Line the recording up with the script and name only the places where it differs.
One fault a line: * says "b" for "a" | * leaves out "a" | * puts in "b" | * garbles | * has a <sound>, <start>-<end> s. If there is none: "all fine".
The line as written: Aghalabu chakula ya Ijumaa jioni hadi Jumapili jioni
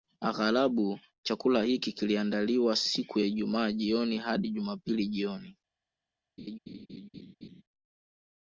* puts in "hiki kiliandaliwa siku"
* has a laugh, 6.4-7.6 s